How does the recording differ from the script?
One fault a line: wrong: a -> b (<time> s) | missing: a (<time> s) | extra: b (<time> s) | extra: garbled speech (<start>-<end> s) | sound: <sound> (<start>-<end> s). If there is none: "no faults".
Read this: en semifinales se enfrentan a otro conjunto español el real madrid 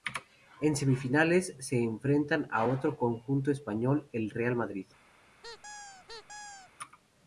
sound: squeak (5.4-6.7 s)